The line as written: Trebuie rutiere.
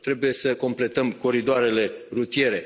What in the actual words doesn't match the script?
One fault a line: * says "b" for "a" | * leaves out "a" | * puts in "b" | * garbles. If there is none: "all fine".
* puts in "să completăm coridoarele"